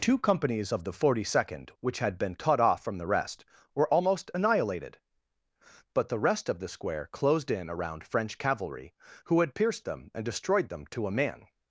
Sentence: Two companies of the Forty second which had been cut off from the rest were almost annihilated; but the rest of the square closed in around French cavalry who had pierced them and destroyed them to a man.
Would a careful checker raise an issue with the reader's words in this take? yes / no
no